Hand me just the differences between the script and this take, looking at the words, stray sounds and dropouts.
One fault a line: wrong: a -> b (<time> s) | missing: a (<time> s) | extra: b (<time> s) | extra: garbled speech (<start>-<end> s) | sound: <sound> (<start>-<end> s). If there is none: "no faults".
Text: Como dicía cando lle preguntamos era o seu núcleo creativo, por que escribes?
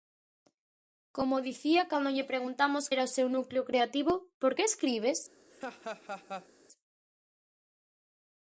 sound: laugh (5.5-6.5 s)